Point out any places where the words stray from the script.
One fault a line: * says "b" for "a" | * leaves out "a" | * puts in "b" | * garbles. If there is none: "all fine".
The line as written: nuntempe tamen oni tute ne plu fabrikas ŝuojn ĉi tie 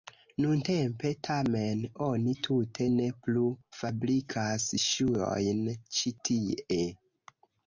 all fine